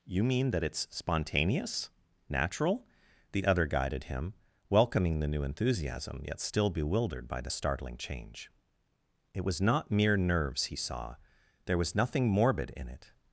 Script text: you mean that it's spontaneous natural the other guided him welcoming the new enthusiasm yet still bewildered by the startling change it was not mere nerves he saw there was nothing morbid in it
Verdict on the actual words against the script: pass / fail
pass